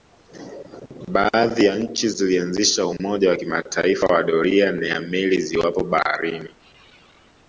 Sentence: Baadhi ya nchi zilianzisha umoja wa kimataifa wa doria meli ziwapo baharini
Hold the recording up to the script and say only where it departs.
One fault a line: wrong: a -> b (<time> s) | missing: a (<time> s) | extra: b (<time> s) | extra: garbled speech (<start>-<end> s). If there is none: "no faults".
extra: ya (4.6 s)